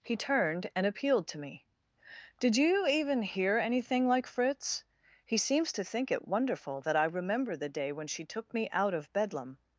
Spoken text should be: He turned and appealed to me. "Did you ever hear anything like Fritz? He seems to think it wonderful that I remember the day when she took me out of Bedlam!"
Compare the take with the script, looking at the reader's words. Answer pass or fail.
fail